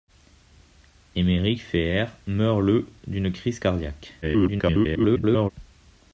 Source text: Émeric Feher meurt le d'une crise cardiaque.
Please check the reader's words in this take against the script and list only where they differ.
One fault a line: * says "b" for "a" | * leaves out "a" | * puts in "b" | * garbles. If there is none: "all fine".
* garbles